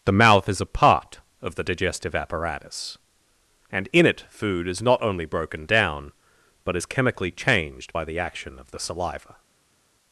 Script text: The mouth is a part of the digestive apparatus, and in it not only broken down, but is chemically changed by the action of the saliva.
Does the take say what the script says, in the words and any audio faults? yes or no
no